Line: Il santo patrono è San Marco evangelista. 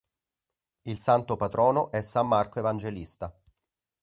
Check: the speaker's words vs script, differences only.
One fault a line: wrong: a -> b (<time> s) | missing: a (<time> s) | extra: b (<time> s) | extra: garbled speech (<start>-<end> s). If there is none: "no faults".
no faults